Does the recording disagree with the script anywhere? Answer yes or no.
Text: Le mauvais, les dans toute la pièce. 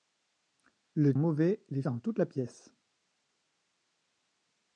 no